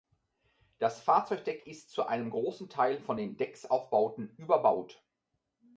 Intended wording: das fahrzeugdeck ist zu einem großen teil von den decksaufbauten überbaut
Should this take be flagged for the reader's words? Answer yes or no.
no